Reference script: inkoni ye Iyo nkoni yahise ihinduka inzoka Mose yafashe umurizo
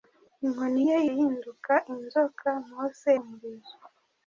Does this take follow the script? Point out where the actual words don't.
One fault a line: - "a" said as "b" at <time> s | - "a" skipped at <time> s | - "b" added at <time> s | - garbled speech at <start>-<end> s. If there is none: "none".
- "Iyo nkoni yahise" skipped at 1.0 s
- "yafashe" skipped at 3.1 s